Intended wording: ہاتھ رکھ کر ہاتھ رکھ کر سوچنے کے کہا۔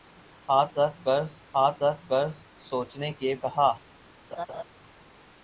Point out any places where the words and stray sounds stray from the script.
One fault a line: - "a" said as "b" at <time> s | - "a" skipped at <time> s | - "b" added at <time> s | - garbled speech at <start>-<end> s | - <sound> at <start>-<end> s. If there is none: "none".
- laugh at 4.3-4.6 s